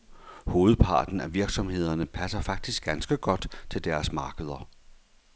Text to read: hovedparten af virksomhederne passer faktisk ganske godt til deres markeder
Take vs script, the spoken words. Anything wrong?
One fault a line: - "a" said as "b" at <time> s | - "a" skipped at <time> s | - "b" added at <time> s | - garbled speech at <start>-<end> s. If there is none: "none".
none